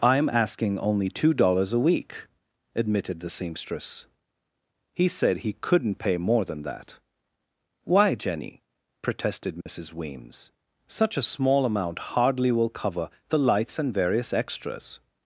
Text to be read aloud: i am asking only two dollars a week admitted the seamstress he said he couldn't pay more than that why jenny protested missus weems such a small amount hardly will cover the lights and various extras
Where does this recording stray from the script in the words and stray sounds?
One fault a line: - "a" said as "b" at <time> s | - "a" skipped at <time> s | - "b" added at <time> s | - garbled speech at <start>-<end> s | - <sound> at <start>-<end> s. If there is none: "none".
- dropout at 9.6-9.7 s